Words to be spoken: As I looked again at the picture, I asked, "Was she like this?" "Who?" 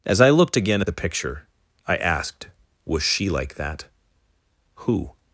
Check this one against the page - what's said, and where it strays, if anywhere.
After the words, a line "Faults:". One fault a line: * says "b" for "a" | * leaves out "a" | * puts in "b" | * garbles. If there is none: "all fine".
As I looked again at the picture, I asked, "Was she like that?" "Who?"
Faults:
* says "that" for "this"